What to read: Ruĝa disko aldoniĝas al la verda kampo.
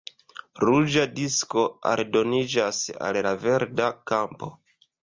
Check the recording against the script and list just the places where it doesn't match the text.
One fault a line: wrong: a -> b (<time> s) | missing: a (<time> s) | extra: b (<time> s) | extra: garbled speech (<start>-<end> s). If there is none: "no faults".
no faults